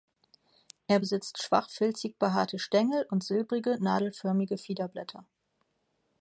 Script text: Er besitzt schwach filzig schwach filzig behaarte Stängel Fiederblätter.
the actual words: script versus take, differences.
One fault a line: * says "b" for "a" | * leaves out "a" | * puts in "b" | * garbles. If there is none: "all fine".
* says "behaarte Stängel und silbrige nadelförmige" for "schwach filzig behaarte Stängel"